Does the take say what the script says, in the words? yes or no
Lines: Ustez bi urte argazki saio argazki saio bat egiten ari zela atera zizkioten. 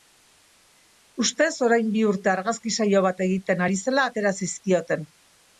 no